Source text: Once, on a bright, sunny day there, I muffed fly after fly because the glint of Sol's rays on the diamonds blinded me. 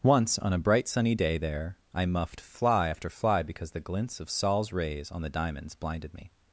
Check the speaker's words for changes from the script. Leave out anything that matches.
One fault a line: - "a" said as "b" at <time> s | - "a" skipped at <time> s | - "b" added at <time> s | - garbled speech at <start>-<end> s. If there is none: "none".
- "glint" said as "glints" at 3.8 s